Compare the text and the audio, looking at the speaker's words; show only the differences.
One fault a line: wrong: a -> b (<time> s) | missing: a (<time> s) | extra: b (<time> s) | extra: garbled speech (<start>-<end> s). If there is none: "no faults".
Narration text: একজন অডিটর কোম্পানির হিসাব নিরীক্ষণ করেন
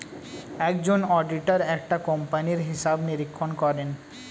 extra: একটা (1.8 s)